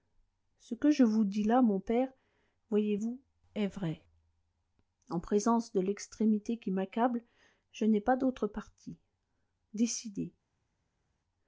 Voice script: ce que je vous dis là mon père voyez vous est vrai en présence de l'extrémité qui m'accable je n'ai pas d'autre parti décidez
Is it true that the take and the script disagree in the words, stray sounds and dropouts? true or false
false